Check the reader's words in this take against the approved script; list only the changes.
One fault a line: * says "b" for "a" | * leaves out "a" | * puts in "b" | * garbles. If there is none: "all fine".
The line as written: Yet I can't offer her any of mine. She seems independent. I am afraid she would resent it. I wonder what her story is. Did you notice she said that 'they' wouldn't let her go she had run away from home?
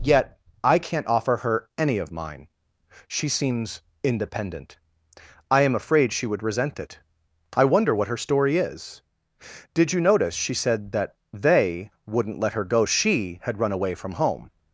all fine